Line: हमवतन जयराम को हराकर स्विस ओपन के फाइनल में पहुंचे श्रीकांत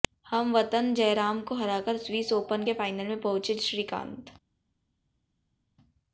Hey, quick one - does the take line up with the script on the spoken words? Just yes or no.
yes